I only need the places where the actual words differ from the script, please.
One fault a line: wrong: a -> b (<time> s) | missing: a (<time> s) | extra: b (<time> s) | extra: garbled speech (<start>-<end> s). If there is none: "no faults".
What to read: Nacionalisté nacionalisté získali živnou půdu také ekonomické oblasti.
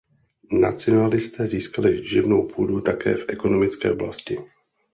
missing: nacionalisté (1.5 s)
extra: v (3.1 s)